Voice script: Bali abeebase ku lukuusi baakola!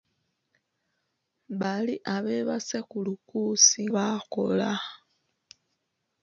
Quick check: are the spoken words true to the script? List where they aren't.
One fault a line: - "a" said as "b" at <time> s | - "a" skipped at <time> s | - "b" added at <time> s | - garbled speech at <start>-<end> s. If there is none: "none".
none